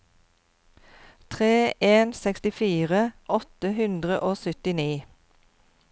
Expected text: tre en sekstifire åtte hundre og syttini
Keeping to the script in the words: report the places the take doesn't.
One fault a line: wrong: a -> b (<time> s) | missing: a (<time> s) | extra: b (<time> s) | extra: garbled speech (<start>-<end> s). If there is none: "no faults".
no faults